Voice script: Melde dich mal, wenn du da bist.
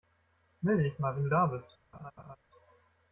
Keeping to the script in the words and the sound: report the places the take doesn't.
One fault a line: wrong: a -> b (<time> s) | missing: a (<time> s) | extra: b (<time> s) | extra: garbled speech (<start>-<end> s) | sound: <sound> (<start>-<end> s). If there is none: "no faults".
sound: laugh (1.9-2.4 s)